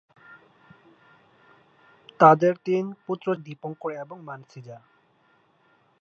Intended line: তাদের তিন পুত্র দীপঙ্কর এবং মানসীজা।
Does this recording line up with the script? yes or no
yes